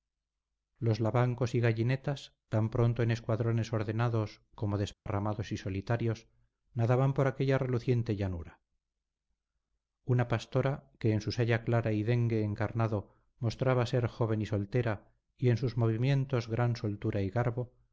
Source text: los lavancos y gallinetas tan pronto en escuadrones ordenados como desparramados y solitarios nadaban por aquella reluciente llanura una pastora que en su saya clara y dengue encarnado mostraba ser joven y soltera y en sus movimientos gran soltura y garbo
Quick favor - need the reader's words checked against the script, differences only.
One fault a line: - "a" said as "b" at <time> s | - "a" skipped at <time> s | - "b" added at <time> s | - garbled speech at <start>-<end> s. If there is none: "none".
none